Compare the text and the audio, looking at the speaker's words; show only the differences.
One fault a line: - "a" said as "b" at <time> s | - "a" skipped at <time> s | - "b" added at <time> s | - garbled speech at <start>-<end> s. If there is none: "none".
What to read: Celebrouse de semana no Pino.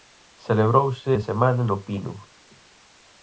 none